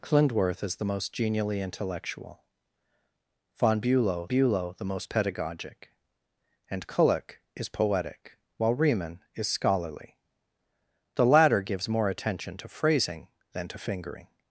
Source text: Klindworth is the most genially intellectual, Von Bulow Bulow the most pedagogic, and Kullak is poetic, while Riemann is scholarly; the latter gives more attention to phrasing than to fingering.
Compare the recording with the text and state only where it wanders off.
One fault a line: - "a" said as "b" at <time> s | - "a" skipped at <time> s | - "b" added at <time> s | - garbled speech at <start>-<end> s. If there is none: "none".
none